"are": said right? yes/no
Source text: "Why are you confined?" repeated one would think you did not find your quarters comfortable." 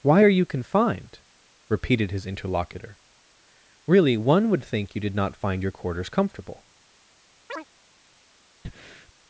yes